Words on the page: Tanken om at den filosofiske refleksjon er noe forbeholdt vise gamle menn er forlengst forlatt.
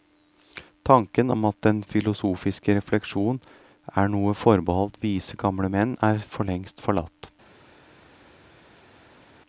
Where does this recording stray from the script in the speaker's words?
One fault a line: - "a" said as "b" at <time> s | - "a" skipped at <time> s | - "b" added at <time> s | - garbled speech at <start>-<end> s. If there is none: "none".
none